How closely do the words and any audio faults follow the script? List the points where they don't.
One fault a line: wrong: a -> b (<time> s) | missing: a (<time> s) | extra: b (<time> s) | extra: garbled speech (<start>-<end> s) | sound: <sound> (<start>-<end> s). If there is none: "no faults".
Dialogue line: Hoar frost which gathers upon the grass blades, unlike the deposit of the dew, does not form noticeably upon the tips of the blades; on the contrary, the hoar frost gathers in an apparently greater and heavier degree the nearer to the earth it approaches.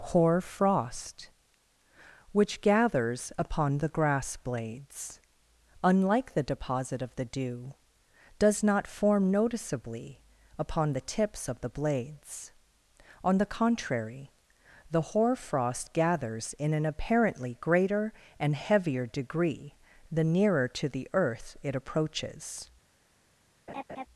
sound: laugh (23.7-24.1 s)